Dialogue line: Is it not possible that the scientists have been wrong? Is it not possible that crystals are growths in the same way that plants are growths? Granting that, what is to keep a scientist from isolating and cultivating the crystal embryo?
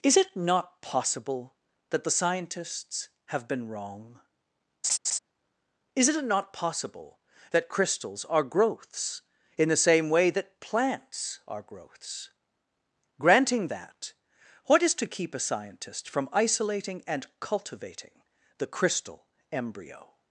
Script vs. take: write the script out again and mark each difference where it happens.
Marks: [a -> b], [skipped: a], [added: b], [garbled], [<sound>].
Is it not possible that the scientists have been wrong? [laugh] Is it not possible that crystals are growths in the same way that plants are growths? Granting that, what is to keep a scientist from isolating and cultivating the crystal embryo?